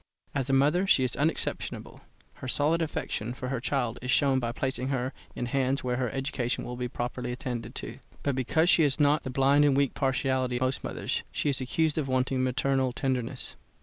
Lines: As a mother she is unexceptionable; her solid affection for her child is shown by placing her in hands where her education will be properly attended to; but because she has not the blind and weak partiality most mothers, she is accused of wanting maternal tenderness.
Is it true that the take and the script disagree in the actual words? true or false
false